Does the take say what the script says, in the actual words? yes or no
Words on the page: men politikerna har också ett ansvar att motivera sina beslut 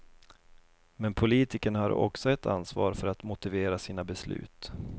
no